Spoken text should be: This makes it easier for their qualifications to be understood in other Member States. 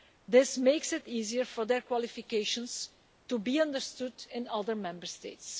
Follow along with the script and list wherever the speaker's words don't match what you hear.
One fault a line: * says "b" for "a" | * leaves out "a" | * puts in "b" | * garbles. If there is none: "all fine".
all fine